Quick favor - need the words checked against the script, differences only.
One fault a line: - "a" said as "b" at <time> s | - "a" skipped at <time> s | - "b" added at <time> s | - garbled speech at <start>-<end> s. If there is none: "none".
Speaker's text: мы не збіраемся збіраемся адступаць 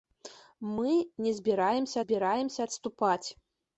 none